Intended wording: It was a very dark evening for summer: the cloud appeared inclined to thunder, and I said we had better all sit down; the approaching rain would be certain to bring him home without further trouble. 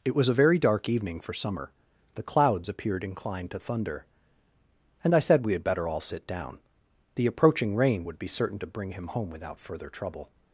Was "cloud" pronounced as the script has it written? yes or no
no